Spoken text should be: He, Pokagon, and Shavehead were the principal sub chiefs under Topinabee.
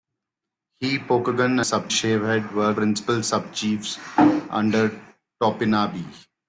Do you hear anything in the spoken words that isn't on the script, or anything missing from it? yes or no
yes